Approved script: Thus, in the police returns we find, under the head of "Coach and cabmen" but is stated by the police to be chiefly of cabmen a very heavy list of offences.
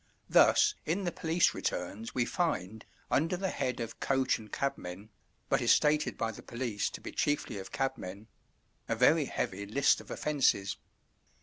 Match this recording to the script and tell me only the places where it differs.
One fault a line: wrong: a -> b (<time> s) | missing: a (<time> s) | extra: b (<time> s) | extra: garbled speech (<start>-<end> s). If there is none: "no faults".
no faults